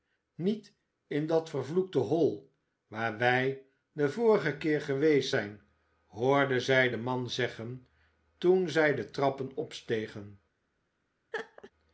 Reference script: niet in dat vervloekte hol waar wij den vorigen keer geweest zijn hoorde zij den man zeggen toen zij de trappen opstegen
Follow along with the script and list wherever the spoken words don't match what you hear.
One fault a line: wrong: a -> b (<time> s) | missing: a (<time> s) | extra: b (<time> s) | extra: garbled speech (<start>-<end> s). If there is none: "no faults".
no faults